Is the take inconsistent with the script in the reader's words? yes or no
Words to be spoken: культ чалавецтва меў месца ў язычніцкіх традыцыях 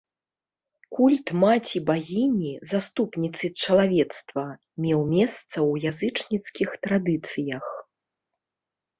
yes